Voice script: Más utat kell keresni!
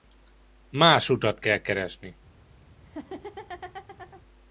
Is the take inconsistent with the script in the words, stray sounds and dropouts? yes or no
yes